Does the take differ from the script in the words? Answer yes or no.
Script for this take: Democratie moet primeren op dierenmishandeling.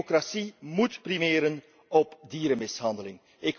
no